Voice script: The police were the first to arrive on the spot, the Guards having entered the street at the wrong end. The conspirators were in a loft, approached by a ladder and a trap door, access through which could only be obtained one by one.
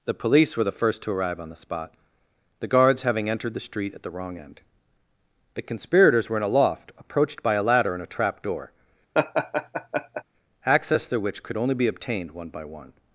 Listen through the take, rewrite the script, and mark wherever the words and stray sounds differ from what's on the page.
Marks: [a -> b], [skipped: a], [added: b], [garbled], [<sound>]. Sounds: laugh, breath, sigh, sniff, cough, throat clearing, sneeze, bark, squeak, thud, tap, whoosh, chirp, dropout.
The police were the first to arrive on the spot, the Guards having entered the street at the wrong end. The conspirators were in a loft, approached by a ladder and a trap door, [laugh] access through which could only be obtained one by one.